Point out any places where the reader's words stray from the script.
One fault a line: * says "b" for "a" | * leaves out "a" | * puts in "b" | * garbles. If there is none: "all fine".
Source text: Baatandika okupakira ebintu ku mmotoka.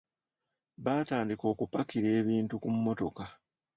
all fine